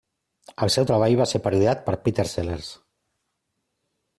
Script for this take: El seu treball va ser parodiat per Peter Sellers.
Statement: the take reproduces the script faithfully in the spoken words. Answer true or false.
true